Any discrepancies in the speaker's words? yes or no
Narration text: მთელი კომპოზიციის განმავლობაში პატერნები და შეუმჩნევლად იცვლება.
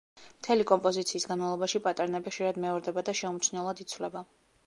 yes